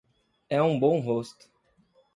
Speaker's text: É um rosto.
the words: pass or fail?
fail